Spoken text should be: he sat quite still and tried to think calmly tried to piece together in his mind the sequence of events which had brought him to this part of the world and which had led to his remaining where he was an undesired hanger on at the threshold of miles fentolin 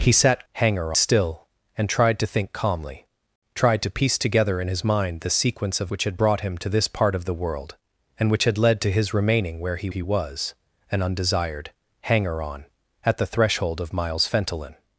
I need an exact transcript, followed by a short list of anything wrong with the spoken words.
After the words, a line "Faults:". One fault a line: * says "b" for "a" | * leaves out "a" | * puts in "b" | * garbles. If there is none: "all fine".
he sat hanger still and tried to think calmly tried to piece together in his mind the sequence of which had brought him to this part of the world and which had led to his remaining where he he was an undesired hanger on at the threshold of miles fentolin
Faults:
* says "hanger" for "quite"
* leaves out "events"
* puts in "he"